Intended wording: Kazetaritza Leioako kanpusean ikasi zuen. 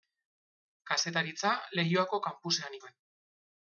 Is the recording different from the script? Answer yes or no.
yes